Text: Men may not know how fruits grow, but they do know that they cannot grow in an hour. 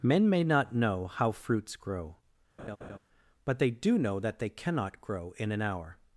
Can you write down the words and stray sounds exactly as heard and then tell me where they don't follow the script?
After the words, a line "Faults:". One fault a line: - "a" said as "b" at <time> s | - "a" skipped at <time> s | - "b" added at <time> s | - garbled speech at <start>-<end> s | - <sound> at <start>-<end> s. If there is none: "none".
Men may not know how fruits grow, but they do know that they cannot grow in an hour.
Faults:
- laugh at 2.6-3.0 s